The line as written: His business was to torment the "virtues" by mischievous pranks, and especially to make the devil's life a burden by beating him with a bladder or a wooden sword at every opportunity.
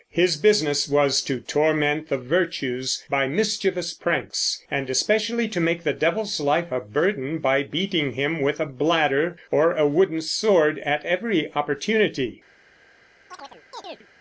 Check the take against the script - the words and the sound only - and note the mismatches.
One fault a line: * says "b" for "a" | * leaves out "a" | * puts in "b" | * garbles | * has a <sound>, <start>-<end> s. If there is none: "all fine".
* has a chirp, 13.3-14.1 s